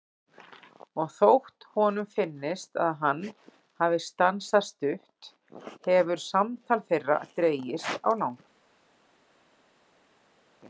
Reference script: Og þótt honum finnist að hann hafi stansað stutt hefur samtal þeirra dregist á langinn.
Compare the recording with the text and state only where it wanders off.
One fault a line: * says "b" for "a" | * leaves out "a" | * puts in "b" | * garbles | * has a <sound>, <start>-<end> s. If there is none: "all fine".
all fine